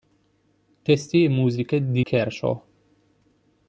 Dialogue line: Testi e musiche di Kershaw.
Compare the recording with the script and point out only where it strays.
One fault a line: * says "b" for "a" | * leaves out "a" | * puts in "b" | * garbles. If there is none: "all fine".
all fine